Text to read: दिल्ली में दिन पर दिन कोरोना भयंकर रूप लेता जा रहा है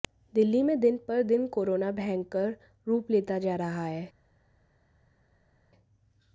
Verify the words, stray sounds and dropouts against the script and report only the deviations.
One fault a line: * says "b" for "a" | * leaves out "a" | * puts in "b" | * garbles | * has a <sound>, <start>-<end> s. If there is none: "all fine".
all fine